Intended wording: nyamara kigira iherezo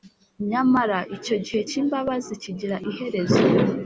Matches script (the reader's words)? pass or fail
fail